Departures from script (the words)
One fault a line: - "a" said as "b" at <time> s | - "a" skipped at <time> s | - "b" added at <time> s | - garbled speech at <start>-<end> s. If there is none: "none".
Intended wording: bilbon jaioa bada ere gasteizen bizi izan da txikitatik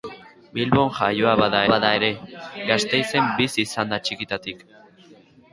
- "bada" added at 1.7 s